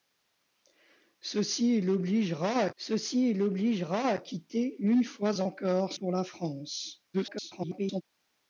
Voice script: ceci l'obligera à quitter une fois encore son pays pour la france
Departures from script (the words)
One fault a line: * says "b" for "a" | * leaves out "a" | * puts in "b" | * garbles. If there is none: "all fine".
* puts in "ceci l'obligera à"
* leaves out "son pays"
* garbles